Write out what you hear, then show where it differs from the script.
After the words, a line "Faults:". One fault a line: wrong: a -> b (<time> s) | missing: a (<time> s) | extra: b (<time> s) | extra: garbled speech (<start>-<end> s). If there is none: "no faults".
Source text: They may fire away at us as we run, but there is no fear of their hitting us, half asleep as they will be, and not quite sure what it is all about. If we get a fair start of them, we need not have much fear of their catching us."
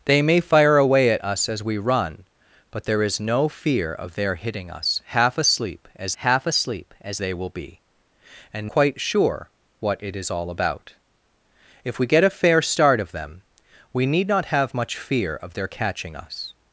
They may fire away at us as we run, but there is no fear of their hitting us, half asleep as half asleep as they will be, and quite sure what it is all about. If we get a fair start of them, we need not have much fear of their catching us."
Faults:
extra: half asleep as (6.2 s)
missing: not (8.7 s)